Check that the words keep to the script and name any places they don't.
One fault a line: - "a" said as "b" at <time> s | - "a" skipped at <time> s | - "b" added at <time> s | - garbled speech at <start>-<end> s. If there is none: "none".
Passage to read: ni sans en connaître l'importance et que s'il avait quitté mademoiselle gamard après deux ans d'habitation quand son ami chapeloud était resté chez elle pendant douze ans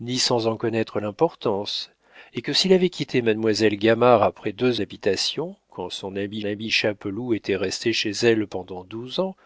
- "ans" skipped at 4.8 s
- "ami" added at 6.4 s